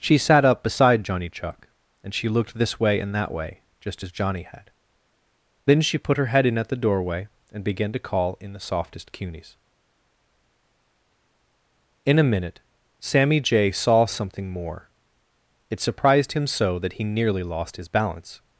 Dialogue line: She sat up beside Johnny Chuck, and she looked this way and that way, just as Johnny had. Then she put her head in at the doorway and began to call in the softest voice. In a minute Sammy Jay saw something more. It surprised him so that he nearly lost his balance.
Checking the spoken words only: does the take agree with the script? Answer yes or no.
no